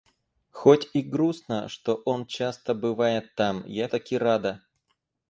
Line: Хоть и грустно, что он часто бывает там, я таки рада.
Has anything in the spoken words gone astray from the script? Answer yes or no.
no